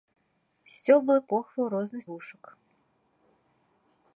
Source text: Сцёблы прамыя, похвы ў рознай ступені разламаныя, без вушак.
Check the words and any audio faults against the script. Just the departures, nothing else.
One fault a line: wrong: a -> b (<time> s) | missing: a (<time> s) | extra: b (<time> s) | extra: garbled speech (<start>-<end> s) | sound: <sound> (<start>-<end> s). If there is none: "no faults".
missing: прамыя (1.2 s)
missing: ступені разламаныя без (2.0 s)